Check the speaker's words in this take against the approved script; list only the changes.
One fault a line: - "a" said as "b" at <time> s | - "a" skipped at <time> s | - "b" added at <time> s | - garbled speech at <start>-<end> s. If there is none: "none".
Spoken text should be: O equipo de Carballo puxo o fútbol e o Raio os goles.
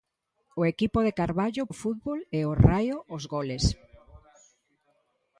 - "puxo" skipped at 1.6 s